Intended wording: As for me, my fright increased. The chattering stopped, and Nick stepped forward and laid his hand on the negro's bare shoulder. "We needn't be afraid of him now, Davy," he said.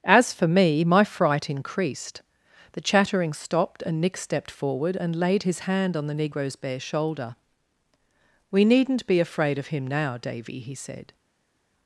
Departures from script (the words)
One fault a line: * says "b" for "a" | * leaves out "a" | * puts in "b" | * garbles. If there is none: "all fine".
all fine